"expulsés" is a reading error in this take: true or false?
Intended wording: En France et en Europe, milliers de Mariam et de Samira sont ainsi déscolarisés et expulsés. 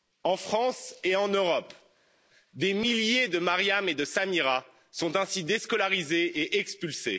false